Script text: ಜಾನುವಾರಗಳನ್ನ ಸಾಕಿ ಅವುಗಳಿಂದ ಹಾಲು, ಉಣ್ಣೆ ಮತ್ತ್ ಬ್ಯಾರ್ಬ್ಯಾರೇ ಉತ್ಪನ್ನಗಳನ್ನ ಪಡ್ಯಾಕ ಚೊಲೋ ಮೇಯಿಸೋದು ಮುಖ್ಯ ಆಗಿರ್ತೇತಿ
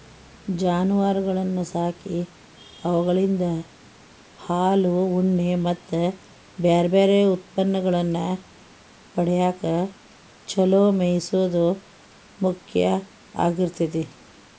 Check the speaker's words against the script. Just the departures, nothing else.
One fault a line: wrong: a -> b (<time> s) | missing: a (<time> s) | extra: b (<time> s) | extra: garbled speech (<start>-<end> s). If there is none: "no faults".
no faults